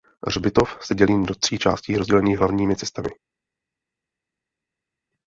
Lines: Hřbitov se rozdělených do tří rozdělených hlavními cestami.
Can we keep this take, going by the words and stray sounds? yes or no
no